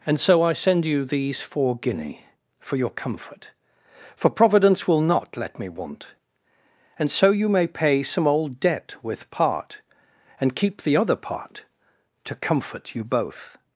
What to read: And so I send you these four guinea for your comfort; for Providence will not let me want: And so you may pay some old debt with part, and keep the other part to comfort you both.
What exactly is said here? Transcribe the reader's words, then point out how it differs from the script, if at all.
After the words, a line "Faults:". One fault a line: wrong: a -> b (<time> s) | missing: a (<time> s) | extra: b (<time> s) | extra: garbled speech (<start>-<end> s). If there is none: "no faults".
And so I send you these four guinea for your comfort; for Providence will not let me want: And so you may pay some old debt with part, and keep the other part to comfort you both.
Faults:
no faults